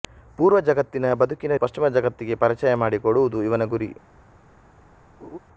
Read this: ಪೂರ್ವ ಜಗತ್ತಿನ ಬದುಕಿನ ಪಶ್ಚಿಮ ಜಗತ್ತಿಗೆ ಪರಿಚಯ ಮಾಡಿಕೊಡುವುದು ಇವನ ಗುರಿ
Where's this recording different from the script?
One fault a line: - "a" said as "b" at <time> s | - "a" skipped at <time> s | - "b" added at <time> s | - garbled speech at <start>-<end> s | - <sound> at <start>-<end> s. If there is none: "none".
- laugh at 5.2-5.4 s